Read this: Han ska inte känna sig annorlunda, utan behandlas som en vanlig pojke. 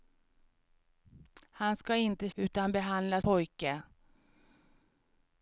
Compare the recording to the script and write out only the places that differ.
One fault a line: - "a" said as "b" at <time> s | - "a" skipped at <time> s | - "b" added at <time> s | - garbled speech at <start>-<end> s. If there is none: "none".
- "känna sig annorlunda" skipped at 2.3 s
- "som en vanlig" skipped at 3.2 s